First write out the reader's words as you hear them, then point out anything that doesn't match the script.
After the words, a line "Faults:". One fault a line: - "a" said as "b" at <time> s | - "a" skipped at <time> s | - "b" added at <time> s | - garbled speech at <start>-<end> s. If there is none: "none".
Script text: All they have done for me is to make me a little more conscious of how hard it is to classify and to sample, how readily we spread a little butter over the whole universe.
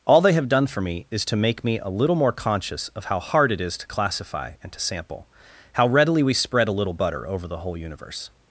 All they have done for me is to make me a little more conscious of how hard it is to classify and to sample, how readily we spread a little butter over the whole universe.
Faults:
none